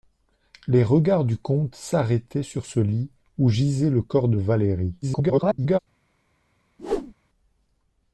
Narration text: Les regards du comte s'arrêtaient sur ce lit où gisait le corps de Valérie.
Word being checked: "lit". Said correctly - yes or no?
yes